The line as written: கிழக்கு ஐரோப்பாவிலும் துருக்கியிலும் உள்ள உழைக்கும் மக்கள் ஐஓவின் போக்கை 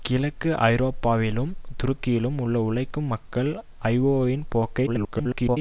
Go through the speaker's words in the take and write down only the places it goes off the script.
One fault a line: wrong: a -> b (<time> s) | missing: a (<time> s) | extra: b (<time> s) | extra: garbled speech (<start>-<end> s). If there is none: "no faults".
extra: garbled speech (4.9-5.6 s)